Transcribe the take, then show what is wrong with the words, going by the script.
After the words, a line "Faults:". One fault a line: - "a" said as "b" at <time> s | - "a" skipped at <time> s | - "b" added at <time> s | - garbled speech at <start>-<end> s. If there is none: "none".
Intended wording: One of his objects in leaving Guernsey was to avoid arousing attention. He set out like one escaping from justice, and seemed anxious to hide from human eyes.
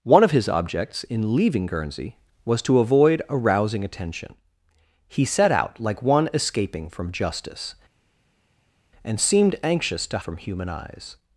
One of his objects in leaving Guernsey was to avoid arousing attention. He set out like one escaping from justice, and seemed anxious to from human eyes.
Faults:
- "hide" skipped at 10.2 s